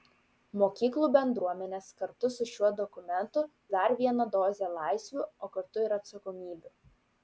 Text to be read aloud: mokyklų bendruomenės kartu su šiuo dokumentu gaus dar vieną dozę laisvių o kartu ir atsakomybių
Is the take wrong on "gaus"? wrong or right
wrong